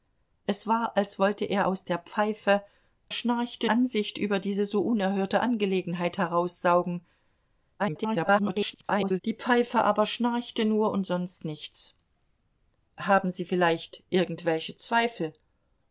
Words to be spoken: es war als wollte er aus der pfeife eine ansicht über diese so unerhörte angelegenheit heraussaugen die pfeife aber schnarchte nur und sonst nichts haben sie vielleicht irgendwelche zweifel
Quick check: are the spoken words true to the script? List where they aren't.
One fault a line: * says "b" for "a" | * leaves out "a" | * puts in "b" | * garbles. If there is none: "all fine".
* says "schnarchte" for "eine"
* garbles